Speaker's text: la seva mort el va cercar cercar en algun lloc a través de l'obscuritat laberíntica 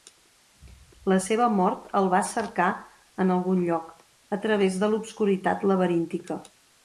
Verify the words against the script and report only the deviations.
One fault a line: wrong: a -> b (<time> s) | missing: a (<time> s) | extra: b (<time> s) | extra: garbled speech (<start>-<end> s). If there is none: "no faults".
missing: cercar (2.7 s)